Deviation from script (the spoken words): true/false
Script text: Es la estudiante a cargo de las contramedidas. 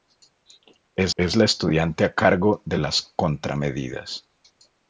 true